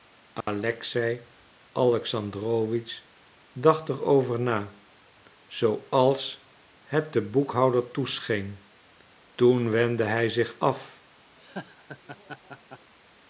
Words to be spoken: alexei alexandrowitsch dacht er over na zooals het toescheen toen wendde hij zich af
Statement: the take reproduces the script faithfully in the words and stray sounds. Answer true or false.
false